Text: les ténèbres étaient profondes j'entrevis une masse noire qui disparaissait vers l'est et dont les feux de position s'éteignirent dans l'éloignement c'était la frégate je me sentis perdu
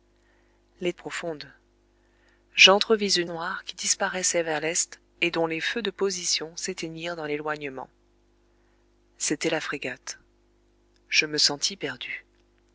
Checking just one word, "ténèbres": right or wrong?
wrong